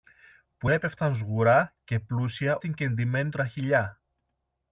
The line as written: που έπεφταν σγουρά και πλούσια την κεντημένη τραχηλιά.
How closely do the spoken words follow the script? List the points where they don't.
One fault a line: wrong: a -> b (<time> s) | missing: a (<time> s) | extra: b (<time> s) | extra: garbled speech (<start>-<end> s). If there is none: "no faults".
no faults